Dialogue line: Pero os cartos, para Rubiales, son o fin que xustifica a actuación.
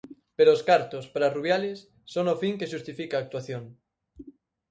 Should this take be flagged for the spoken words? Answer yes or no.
no